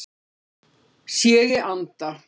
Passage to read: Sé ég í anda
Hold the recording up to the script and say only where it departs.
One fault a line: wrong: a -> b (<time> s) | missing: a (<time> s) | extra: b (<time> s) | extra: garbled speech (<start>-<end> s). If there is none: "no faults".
missing: ég (1.4 s)